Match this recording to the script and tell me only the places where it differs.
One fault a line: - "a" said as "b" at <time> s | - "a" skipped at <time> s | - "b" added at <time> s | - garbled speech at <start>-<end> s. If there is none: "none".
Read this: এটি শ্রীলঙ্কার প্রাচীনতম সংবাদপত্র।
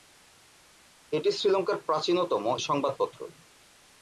none